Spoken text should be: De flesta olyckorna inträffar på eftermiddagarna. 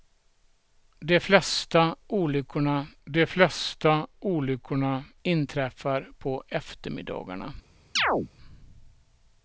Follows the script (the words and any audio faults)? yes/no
no